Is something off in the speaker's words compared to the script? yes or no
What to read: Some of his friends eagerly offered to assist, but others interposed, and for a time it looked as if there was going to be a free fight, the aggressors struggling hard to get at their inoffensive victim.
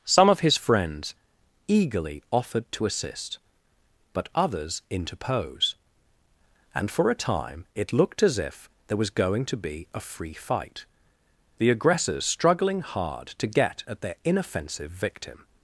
yes